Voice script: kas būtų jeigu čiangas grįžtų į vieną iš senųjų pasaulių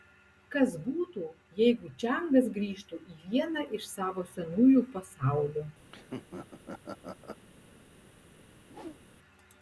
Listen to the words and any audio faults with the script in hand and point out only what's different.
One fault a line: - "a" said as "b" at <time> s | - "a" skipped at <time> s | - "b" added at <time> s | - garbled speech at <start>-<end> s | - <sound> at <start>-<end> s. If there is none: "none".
- "savo" added at 3.9 s
- laugh at 5.9-7.4 s
- whoosh at 8.6-9.0 s